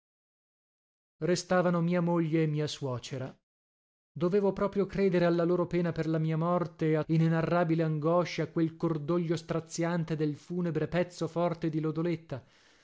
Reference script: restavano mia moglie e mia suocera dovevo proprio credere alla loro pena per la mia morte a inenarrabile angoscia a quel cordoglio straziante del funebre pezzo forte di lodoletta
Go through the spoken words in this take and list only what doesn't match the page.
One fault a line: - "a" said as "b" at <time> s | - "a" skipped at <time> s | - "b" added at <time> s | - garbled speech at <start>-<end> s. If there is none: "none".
none